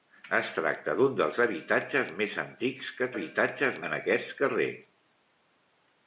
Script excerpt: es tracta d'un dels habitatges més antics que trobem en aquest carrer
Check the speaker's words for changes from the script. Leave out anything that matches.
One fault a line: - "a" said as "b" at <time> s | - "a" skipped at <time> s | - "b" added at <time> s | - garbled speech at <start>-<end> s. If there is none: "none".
- "trobem" said as "habitatges" at 3.1 s